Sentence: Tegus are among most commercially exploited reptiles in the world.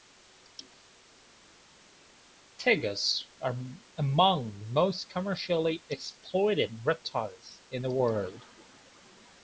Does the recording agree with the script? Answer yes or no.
yes